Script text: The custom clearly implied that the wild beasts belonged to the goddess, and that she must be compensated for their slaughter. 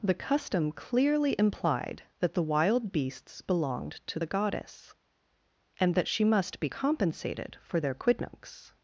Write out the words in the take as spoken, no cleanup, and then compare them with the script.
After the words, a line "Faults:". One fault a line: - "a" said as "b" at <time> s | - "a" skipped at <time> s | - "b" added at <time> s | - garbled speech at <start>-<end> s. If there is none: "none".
The custom clearly implied that the wild beasts belonged to the goddess, and that she must be compensated for their quidnuncs.
Faults:
- "slaughter" said as "quidnuncs" at 7.9 s